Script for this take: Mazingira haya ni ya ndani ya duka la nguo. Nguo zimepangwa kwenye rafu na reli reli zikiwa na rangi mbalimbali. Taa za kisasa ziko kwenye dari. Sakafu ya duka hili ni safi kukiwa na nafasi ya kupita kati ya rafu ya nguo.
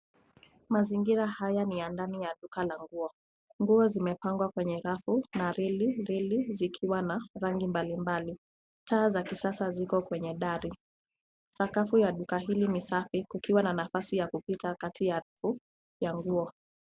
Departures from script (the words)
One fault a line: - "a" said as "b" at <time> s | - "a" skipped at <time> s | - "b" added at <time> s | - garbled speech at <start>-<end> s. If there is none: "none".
none